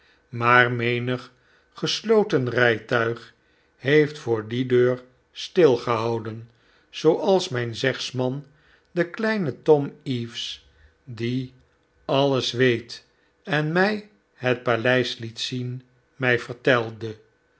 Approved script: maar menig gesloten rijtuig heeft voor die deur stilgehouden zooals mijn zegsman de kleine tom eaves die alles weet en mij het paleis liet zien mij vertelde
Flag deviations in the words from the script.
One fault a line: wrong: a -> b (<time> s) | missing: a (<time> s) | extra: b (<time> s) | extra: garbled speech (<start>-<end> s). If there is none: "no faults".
no faults